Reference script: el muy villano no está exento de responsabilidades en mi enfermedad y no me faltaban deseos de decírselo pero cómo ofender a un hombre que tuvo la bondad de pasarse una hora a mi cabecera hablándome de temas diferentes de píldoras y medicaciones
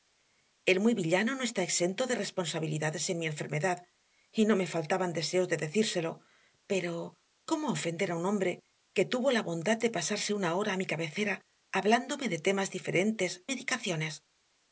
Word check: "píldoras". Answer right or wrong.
wrong